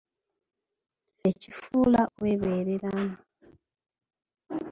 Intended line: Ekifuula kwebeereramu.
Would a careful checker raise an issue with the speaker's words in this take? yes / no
no